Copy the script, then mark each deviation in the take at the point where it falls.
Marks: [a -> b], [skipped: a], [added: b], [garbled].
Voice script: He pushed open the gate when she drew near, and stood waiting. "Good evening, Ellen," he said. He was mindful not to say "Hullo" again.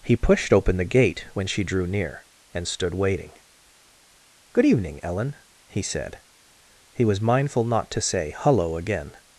He pushed open the gate when she drew near, and stood waiting. "Good evening, Ellen," he said. He was mindful not to say "Hullo" again.